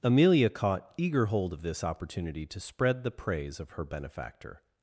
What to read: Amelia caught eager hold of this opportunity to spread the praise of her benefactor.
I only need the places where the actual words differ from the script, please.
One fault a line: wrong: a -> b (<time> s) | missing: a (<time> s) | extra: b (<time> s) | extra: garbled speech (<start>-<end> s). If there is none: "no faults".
no faults